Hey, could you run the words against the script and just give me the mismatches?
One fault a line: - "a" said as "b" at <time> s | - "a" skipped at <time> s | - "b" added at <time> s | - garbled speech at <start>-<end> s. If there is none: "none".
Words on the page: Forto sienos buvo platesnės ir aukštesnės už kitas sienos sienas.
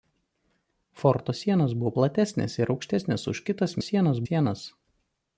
none